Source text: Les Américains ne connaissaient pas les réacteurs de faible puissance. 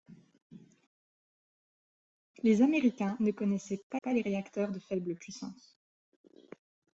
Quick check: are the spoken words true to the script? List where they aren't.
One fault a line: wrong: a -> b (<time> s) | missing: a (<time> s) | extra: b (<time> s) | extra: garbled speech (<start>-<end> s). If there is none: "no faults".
extra: pas (4.0 s)